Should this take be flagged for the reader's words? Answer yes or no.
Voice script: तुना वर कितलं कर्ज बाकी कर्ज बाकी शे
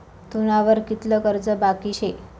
yes